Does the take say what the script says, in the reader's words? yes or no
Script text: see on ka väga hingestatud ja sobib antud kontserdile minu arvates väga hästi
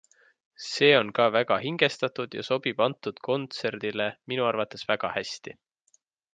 yes